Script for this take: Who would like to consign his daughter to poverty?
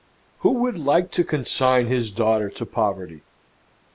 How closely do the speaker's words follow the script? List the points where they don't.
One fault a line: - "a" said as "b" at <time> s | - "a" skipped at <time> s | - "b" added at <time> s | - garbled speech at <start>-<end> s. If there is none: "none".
none